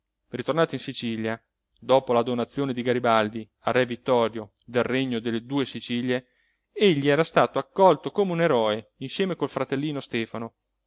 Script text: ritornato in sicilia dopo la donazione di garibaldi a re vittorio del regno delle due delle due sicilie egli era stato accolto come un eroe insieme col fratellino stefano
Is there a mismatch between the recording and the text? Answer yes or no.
yes